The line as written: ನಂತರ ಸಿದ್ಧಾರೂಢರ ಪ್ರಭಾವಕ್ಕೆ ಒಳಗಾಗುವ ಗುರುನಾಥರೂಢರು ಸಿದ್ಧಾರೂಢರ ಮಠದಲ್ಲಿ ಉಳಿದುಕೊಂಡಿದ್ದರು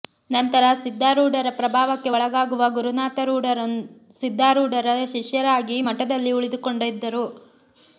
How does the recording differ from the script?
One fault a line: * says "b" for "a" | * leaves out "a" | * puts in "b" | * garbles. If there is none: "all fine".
* puts in "ಶಿಷ್ಯರಾಗಿ"